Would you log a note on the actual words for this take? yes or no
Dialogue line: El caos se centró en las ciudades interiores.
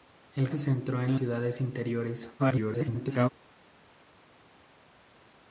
yes